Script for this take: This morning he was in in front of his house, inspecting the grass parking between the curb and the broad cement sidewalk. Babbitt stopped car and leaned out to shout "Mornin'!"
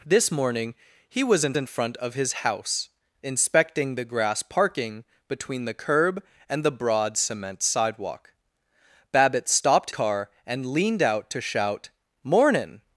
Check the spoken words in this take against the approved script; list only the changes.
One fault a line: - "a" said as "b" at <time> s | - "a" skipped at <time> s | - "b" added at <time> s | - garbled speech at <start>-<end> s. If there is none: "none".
none